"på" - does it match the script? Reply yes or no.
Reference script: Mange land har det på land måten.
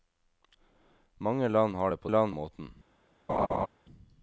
yes